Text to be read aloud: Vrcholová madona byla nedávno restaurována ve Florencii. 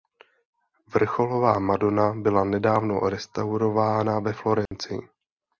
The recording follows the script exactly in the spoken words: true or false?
true